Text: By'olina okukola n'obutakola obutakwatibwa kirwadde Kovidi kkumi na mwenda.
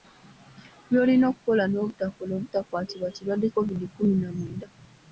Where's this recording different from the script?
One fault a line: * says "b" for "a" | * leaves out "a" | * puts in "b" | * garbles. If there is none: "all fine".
all fine